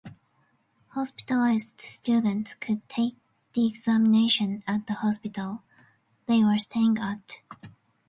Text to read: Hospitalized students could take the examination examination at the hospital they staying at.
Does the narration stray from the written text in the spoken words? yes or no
yes